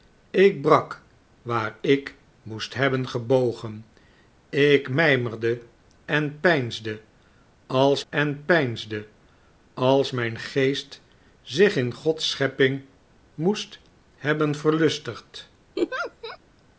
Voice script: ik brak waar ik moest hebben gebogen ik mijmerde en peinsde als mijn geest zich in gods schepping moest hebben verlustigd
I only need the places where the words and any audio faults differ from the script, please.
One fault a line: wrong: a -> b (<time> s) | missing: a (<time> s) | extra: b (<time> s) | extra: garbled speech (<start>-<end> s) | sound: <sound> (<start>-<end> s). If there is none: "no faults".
extra: en peinsde als (8.1 s)
sound: laugh (15.8-16.4 s)